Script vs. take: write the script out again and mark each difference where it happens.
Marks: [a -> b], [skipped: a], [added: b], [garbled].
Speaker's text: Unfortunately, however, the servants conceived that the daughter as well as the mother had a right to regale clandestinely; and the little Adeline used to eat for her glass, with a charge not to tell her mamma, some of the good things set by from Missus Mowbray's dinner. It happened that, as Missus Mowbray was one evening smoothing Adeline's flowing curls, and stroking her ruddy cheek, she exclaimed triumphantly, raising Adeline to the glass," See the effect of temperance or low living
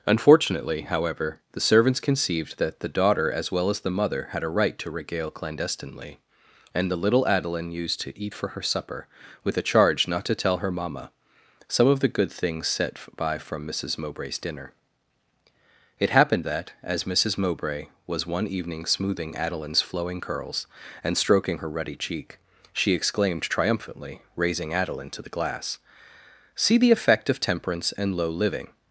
Unfortunately, however, the servants conceived that the daughter as well as the mother had a right to regale clandestinely; and the little Adeline used to eat for her [glass, -> supper] with a charge not to tell her mamma, some of the good things set by from Missus Mowbray's dinner. It happened that, as Missus Mowbray was one evening smoothing Adeline's flowing curls, and stroking her ruddy cheek, she exclaimed triumphantly, raising Adeline to the glass," See the effect of temperance [or -> and] low living